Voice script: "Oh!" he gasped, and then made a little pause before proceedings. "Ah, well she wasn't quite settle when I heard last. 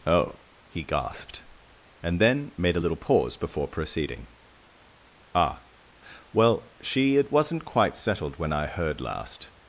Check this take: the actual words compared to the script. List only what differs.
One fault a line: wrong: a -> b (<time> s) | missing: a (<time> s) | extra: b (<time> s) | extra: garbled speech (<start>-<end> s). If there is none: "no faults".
wrong: proceedings -> proceeding (3.7 s)
extra: it (7.2 s)
wrong: settle -> settled (8.0 s)